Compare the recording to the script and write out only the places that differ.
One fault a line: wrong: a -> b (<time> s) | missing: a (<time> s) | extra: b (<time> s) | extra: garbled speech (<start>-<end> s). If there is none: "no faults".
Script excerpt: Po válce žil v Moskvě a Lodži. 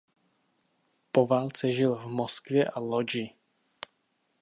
no faults